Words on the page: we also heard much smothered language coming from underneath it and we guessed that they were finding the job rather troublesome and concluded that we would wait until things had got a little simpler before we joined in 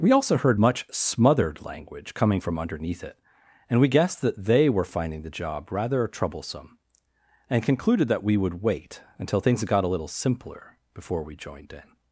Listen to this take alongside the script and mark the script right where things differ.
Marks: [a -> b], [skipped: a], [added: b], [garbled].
we also heard much smothered language coming from underneath it and we guessed that they were finding the job rather troublesome and concluded that we would wait until things [skipped: had] got a little simpler before we joined in